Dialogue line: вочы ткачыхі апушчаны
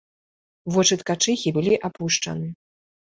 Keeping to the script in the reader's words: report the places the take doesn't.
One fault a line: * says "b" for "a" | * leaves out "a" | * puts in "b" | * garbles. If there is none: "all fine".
* puts in "былі"